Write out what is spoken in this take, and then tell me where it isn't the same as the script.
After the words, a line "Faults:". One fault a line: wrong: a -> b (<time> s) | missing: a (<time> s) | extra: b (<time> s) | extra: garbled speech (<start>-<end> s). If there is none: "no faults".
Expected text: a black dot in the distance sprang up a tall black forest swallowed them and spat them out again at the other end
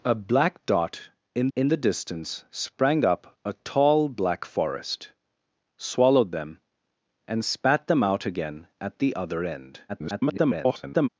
a black dot in in the distance sprang up a tall black forest swallowed them and spat them out again at the other end [garbled]
Faults:
extra: in (1.6 s)
extra: garbled speech (9.9-11.1 s)